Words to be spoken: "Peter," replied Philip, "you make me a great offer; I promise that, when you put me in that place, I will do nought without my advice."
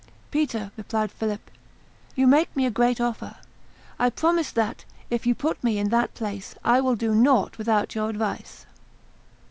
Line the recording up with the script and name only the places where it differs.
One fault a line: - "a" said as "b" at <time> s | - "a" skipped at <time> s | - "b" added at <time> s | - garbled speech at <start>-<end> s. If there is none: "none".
- "when" said as "if" at 5.1 s
- "my" said as "your" at 7.9 s